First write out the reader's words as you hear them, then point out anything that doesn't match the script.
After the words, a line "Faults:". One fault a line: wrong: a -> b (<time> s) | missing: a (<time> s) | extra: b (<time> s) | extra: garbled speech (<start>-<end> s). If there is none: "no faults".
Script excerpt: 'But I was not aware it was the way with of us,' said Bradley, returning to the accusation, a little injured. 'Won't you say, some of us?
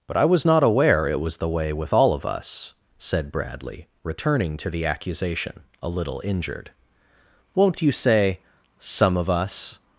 'But I was not aware it was the way with all of us,' said Bradley, returning to the accusation, a little injured. 'Won't you say, some of us?
Faults:
extra: all (1.9 s)